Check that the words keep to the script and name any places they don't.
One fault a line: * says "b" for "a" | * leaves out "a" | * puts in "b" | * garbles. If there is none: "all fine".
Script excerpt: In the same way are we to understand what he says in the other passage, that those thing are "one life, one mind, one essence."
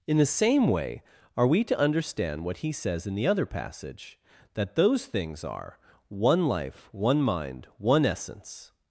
* says "things" for "thing"